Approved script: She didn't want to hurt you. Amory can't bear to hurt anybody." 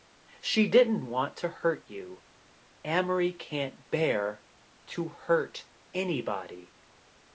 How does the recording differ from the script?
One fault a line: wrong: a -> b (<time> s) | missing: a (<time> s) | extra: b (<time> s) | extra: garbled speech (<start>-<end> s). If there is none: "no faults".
no faults